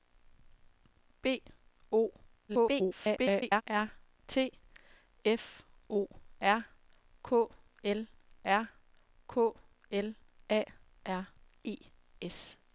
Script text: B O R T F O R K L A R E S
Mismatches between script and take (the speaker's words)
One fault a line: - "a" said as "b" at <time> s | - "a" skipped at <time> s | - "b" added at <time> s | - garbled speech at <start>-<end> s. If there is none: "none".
- garbled speech at 2.5-3.6 s
- "R K L" added at 8.4 s